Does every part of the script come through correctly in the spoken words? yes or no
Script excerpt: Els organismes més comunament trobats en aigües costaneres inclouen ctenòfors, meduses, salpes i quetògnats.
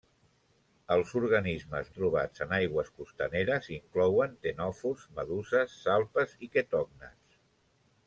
no